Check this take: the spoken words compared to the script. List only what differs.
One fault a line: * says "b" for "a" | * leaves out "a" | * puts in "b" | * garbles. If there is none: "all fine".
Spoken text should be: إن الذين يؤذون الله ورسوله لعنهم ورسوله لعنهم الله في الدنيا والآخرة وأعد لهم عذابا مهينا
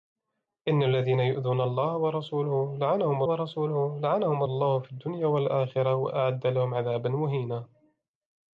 all fine